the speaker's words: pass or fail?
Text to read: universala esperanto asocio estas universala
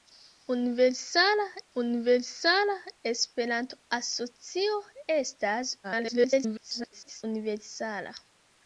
fail